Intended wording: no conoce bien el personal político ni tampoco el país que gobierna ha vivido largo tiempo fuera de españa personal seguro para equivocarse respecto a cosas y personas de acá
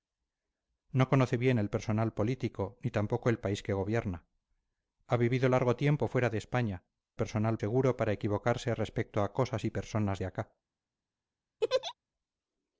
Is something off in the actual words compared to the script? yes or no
no